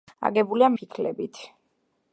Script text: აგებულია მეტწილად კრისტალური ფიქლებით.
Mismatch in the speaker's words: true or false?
true